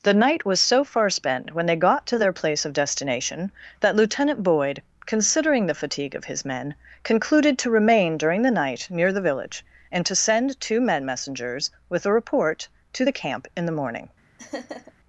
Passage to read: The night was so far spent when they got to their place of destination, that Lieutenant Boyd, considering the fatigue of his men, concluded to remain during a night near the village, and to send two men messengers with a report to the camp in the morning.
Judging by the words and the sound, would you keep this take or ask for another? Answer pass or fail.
fail